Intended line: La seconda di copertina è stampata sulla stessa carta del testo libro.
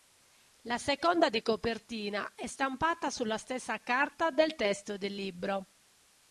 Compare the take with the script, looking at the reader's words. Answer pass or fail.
fail